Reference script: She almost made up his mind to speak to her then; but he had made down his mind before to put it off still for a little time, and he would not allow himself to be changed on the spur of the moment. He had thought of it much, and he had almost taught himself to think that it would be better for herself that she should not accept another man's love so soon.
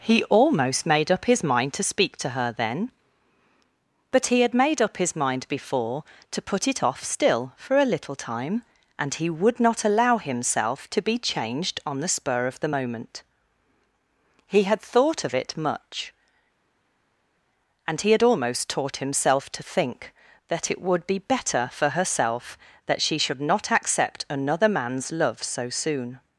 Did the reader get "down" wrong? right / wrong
wrong